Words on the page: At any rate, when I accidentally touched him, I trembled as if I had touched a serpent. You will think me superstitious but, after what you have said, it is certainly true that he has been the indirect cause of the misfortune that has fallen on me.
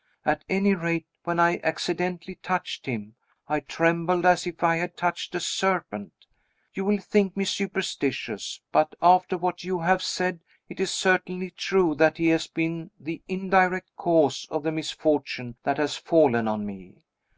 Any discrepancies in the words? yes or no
no